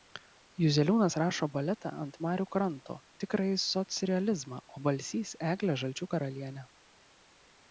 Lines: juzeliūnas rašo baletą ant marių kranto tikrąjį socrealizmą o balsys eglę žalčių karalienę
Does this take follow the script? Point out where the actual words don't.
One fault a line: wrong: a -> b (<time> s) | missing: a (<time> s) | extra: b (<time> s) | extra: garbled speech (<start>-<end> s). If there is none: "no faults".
no faults